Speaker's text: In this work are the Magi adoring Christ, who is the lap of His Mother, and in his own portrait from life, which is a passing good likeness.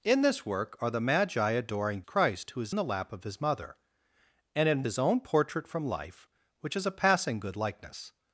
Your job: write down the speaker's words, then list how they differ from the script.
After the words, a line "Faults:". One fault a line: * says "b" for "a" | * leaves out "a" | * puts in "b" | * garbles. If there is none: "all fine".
In this work are the Magi adoring Christ, who is the lap of His Mother, and in his own portrait from life, which is a passing good likeness.
Faults:
all fine